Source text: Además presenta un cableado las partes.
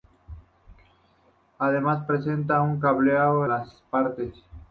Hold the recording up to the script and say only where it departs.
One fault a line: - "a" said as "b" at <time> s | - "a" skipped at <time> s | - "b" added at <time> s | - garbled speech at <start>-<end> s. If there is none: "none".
none